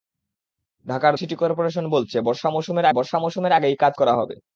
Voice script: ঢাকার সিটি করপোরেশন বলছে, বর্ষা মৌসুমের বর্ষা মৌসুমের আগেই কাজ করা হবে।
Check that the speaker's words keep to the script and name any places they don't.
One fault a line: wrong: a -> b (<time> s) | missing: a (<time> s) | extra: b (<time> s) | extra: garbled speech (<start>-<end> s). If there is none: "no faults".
no faults